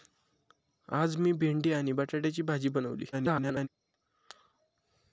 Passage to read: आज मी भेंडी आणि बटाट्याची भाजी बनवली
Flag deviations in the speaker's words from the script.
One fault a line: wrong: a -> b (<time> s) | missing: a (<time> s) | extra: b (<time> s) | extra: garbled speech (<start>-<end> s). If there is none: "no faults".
extra: garbled speech (3.1-3.7 s)